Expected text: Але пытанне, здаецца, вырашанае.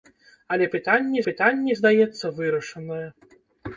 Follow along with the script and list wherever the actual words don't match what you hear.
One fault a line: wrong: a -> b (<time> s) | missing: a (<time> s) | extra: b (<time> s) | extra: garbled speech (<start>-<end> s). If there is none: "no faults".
extra: пытанне (1.3 s)